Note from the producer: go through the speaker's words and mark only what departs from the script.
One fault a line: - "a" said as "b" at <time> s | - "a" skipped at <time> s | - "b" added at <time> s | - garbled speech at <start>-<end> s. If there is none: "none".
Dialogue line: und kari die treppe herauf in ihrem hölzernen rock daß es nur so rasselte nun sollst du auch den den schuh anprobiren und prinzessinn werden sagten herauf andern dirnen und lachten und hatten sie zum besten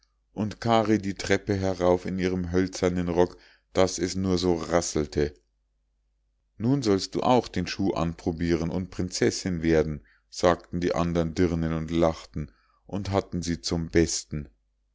- "den" skipped at 7.7 s
- "herauf" said as "die" at 10.8 s